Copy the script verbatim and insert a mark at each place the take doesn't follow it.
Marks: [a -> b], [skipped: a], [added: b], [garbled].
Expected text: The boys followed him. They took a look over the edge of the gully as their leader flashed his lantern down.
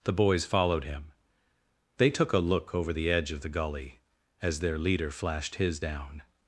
The boys followed him. They took a look over the edge of the gully as their leader flashed his [skipped: lantern] down.